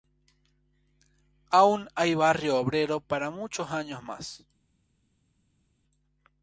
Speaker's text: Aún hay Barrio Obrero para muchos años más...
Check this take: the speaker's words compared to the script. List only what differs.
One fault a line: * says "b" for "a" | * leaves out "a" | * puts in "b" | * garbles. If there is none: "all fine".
all fine